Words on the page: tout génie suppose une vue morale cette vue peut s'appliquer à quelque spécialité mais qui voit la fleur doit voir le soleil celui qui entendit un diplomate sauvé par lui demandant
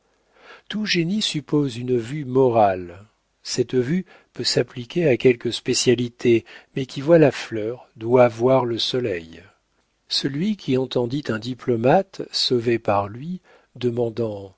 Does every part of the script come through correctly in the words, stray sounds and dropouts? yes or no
yes